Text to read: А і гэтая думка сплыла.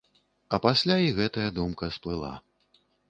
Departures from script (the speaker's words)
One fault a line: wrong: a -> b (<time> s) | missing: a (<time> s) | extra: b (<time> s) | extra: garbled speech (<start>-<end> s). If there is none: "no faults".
extra: пасля (0.6 s)